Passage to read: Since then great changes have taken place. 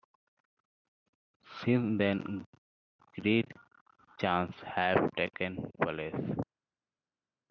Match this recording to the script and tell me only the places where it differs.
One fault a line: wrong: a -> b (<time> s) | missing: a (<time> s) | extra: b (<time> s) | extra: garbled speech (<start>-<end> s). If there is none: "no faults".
no faults